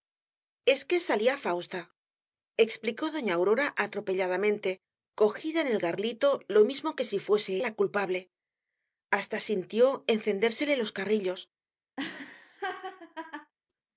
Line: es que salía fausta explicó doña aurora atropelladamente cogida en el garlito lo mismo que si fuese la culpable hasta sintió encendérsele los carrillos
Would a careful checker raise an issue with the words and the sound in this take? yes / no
yes